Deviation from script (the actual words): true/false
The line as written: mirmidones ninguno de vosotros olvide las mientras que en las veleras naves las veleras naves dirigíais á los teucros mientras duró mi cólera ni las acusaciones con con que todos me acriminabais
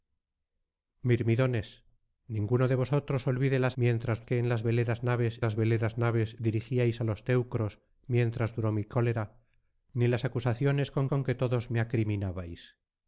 false